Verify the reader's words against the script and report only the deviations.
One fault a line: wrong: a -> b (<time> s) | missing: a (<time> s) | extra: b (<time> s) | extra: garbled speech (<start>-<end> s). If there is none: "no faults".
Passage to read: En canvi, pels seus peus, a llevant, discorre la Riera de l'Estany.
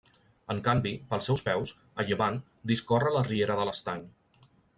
no faults